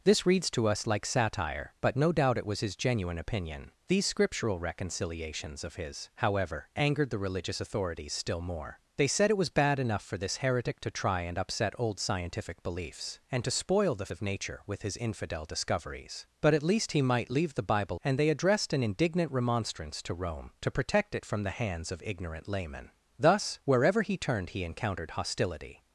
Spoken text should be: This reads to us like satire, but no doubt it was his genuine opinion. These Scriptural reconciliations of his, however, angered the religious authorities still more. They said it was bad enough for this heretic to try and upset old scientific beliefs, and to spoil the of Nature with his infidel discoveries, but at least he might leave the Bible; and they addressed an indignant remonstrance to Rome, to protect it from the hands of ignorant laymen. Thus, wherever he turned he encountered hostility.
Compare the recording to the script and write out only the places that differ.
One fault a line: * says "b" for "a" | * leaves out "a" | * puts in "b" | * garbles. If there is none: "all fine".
all fine